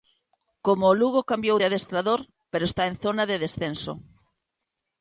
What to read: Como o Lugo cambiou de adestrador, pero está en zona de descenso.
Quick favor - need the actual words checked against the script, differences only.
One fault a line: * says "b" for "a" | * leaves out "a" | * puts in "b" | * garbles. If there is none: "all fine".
all fine